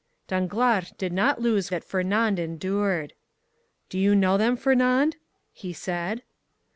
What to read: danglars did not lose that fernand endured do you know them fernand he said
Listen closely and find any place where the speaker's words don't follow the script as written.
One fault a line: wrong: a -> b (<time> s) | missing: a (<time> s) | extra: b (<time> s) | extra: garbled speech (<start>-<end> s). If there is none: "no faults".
no faults